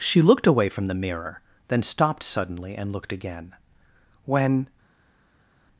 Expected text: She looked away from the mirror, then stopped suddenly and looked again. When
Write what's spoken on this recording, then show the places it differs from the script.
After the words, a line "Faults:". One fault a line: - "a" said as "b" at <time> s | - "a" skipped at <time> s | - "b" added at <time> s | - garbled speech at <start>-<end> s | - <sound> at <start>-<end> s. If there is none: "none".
She looked away from the mirror, then stopped suddenly and looked again. When
Faults:
none